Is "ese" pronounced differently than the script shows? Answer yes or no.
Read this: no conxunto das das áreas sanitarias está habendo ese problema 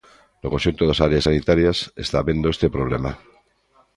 yes